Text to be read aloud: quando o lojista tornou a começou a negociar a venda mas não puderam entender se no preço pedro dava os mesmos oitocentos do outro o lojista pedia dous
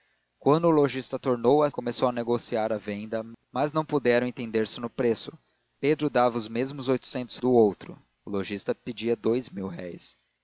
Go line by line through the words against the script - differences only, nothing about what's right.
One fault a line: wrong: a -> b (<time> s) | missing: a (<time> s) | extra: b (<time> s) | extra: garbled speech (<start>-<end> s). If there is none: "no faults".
no faults